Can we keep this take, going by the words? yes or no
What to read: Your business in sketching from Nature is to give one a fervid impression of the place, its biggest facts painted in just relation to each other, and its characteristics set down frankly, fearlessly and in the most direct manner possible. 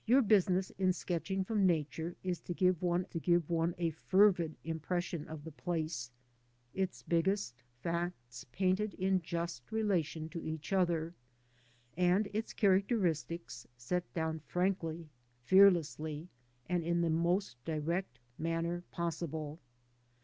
no